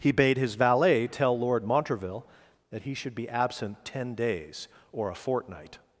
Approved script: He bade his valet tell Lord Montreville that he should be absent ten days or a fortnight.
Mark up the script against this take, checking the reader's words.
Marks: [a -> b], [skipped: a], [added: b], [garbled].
He bade his valet tell Lord Montreville that he should be absent ten days or a fortnight.